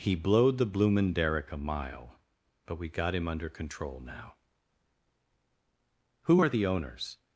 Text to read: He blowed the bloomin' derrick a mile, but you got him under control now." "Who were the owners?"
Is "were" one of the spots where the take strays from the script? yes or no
yes